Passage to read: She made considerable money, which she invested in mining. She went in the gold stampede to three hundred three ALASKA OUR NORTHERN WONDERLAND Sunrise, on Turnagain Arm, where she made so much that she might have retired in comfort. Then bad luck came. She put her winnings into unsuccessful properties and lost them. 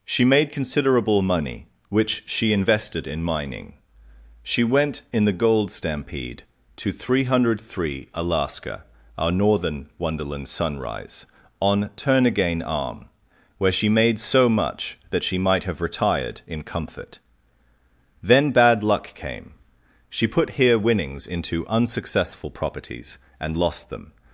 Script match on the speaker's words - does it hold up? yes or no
no